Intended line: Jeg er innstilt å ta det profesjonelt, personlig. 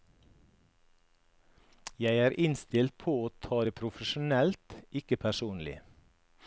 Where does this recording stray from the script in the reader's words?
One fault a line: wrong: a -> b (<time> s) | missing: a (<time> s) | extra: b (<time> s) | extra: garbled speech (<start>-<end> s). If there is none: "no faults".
extra: på (3.0 s)
extra: ikke (5.0 s)